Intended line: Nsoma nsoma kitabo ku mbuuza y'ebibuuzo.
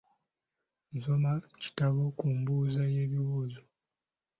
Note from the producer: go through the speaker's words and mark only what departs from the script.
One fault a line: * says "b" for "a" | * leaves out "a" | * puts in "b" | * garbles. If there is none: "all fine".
* leaves out "nsoma"